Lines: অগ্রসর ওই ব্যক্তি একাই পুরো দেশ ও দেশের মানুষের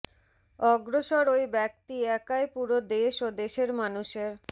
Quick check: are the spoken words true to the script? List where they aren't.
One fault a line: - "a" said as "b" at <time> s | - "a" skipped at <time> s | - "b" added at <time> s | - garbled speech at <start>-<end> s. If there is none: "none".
none